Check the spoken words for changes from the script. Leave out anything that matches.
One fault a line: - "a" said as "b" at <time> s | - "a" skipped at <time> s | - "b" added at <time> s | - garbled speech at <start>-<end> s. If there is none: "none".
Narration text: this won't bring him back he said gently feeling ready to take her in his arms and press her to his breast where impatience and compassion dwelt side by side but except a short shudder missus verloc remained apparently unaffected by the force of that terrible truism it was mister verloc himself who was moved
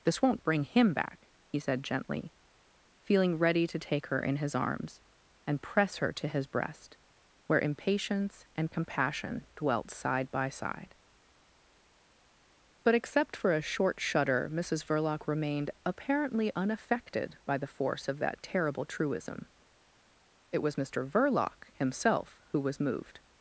- "for" added at 13.3 s